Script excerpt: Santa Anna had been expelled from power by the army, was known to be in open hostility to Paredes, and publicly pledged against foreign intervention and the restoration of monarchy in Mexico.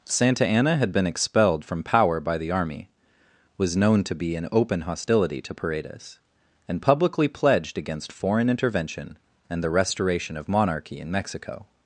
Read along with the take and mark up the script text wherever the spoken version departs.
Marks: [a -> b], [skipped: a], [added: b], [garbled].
Santa Anna had been expelled from power by the army, was known to be in open hostility to Paredes, and publicly pledged against foreign intervention and the restoration of monarchy in Mexico.